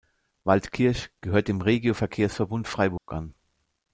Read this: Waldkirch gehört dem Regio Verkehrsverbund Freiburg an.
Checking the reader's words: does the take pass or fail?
pass